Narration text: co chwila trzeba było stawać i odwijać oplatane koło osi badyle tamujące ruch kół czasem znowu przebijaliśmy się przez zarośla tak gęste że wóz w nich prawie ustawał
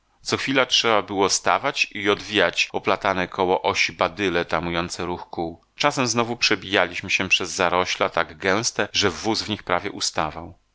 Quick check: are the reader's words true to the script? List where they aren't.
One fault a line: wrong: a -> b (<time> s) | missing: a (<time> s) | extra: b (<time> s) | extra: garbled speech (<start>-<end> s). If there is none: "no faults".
no faults